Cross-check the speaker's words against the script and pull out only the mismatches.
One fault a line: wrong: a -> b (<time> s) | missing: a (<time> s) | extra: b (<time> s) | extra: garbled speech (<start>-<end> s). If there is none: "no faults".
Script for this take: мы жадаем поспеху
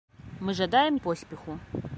no faults